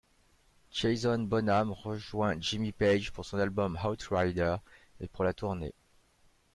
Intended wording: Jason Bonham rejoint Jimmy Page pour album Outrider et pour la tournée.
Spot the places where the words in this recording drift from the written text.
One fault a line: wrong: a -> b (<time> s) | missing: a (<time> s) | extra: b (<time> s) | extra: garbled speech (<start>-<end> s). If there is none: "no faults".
extra: son (3.2 s)